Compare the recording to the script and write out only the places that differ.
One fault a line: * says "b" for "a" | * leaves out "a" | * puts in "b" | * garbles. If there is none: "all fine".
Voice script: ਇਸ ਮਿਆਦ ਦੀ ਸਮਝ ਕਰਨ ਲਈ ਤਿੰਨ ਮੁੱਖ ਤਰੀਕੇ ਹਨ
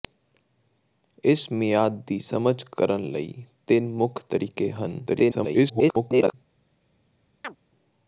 * garbles